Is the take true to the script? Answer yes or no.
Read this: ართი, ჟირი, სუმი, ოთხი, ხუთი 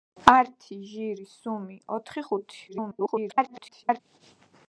no